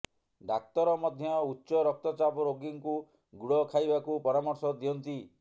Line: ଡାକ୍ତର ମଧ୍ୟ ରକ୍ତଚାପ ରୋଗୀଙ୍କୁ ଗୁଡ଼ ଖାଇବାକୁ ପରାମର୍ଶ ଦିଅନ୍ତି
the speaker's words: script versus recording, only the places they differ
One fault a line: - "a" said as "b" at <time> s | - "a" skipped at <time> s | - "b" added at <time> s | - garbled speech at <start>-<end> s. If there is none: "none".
- "ଉଚ୍ଚ" added at 1.4 s